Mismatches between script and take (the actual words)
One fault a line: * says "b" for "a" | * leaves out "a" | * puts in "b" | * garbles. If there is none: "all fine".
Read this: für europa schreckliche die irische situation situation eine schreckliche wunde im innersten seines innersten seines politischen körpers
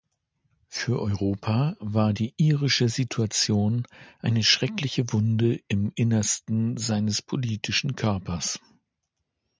* says "war" for "schreckliche"
* leaves out "situation"
* leaves out "innersten seines"